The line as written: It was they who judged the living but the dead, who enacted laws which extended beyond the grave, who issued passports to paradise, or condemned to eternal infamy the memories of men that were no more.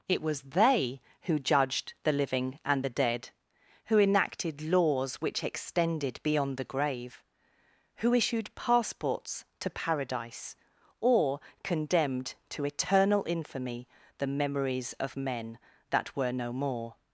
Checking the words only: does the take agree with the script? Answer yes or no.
no